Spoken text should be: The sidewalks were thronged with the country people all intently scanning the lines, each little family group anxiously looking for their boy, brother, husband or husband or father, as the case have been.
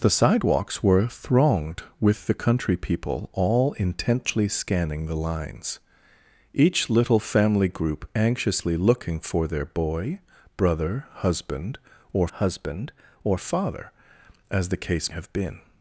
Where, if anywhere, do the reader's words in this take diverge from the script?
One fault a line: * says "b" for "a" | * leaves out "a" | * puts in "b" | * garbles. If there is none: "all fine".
all fine